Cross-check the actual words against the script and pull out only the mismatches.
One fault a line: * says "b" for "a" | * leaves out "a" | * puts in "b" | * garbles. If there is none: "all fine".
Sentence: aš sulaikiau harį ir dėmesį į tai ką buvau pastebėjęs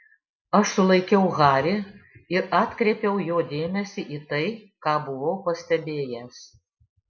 * puts in "atkreipiau jo"